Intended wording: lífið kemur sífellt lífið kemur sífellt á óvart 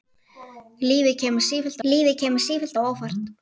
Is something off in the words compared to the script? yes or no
no